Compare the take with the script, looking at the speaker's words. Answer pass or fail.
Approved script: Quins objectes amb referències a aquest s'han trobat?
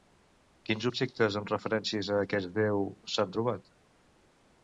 fail